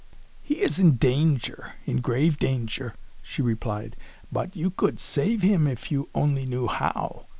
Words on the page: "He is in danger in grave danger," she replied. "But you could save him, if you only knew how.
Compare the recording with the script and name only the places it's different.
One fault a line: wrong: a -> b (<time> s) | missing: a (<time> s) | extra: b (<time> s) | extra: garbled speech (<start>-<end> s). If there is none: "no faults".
no faults